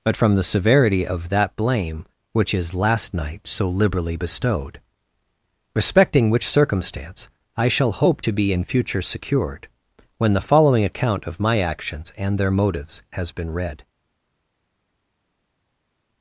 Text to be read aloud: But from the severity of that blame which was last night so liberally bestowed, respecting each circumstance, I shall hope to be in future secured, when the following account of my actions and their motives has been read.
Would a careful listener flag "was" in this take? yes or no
yes